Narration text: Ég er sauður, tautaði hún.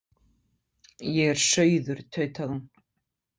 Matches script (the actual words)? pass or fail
pass